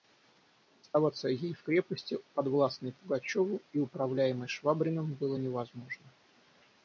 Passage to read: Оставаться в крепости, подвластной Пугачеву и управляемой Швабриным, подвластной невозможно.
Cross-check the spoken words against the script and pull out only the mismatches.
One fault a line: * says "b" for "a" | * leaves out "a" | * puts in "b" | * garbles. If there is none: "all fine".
* puts in "ей"
* says "было" for "подвластной"